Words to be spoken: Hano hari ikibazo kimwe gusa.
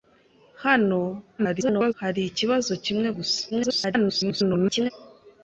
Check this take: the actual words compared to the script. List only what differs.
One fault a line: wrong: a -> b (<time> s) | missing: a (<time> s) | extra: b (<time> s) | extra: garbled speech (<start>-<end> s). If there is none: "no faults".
extra: garbled speech (1.4-1.9 s)
extra: garbled speech (3.5-4.9 s)